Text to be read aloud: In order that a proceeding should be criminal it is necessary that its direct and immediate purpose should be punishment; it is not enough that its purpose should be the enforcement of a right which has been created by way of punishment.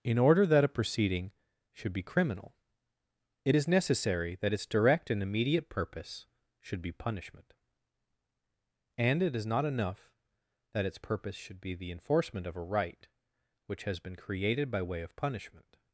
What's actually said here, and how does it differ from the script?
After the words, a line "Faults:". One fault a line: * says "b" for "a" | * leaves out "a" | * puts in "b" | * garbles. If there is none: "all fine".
In order that a proceeding should be criminal it is necessary that its direct and immediate purpose should be punishment; and it is not enough that its purpose should be the enforcement of a right which has been created by way of punishment.
Faults:
* puts in "and"